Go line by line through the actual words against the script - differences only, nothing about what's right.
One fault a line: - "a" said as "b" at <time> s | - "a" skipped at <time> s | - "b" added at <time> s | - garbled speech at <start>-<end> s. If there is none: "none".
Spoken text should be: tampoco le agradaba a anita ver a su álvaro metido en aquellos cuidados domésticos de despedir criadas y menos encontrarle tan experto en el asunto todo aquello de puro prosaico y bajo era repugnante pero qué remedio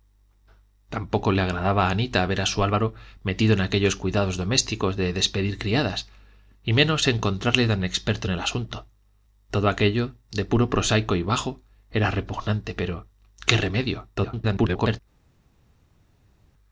- garbled speech at 14.1-15.0 s